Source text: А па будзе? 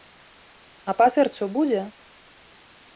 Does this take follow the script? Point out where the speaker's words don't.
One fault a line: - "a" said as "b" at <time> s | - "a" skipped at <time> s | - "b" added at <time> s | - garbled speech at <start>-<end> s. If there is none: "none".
- "сэрцу" added at 1.1 s